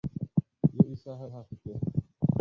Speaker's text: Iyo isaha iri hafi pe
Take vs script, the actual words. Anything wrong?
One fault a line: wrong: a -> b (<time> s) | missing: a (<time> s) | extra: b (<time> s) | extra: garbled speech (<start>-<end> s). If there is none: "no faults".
missing: iri (1.2 s)